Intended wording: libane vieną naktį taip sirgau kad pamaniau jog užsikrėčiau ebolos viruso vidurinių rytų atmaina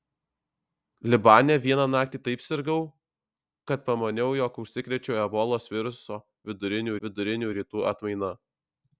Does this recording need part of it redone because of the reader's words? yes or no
yes